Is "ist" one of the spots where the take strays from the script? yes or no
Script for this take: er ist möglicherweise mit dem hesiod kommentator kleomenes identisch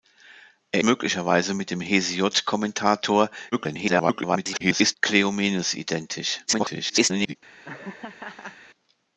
yes